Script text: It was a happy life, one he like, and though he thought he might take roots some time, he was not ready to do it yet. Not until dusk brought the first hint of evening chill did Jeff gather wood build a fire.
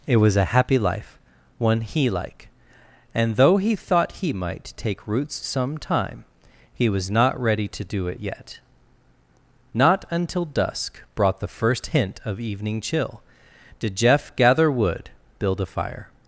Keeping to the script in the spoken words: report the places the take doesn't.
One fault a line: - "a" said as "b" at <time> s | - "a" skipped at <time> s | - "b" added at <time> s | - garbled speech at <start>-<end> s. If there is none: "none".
none